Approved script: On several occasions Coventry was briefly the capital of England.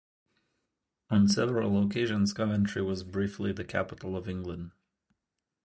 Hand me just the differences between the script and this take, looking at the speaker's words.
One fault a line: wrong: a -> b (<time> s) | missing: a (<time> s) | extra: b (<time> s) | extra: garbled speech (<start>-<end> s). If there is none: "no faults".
no faults